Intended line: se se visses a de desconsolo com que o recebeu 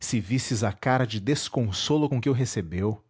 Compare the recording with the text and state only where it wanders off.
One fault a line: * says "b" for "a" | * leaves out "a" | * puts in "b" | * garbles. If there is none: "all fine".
* leaves out "se"
* puts in "cara"